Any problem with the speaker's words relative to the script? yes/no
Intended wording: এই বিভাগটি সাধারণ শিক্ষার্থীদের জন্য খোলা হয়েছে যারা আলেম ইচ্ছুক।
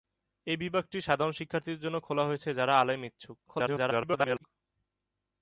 yes